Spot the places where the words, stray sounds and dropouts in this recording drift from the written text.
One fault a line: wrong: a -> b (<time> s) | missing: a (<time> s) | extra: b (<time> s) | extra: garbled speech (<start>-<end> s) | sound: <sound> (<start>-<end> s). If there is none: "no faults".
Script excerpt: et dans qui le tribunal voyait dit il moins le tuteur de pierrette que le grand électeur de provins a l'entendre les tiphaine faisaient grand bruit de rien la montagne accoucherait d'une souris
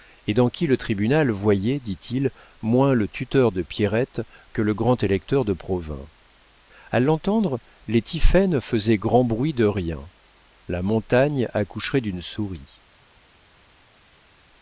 no faults